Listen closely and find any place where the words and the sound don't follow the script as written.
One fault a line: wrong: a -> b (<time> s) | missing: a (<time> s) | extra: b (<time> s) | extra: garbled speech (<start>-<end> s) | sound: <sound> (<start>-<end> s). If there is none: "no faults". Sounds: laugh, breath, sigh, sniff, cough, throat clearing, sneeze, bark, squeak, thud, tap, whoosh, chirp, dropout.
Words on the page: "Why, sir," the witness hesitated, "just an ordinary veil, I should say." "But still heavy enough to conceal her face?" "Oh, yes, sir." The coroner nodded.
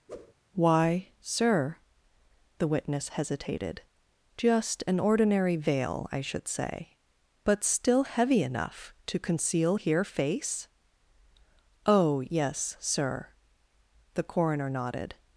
sound: whoosh (0.1-0.3 s)
wrong: her -> here (9.7 s)